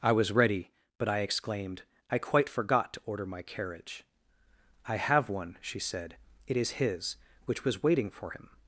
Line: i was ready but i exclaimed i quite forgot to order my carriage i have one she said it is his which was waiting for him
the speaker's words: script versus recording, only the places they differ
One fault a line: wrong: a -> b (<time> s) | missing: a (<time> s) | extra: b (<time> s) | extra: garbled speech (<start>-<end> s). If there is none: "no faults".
no faults